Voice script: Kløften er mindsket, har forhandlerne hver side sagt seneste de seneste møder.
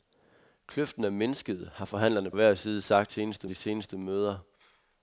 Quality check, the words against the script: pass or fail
pass